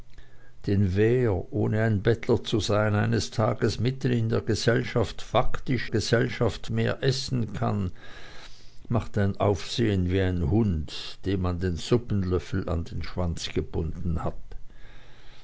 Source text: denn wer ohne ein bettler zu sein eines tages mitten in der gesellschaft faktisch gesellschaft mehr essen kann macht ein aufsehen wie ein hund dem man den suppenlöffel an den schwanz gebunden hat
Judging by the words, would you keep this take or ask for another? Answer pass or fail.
pass